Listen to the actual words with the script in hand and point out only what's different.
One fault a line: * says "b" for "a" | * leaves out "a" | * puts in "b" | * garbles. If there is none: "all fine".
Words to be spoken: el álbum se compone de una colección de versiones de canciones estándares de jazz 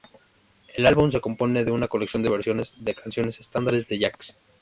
all fine